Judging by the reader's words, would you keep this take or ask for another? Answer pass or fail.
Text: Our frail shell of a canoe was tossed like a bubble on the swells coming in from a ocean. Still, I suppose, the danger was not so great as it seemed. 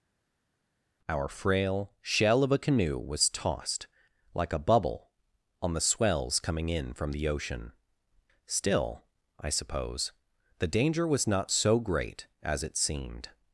fail